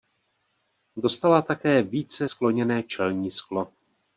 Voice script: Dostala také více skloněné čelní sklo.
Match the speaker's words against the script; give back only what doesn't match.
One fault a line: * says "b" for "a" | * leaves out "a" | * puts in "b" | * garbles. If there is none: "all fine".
all fine